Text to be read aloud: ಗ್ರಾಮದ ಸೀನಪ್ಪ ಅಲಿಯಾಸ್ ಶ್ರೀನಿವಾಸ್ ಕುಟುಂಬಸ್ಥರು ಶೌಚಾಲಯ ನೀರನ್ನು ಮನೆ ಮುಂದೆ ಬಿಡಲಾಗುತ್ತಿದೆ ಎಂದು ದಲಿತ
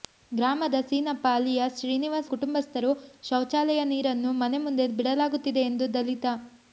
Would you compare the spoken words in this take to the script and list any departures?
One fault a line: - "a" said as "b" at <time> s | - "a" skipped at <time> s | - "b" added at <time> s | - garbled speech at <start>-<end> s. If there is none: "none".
none